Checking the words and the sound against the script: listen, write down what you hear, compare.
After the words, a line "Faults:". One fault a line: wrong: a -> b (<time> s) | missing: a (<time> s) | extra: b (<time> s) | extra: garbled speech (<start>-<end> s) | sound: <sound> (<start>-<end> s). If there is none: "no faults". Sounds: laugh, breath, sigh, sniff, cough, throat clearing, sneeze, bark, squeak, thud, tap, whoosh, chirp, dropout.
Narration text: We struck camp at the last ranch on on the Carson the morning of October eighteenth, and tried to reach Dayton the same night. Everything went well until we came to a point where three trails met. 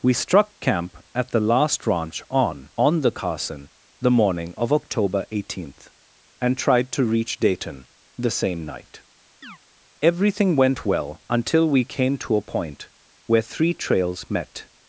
We struck camp at the last ranch on on the Carson the morning of October eighteenth, and tried to reach Dayton the same night. Everything went well until we came to a point where three trails met.
Faults:
sound: chirp (9.4-9.6 s)